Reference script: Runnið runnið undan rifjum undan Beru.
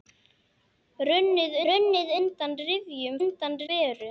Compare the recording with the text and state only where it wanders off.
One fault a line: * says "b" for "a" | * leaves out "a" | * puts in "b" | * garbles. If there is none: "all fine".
all fine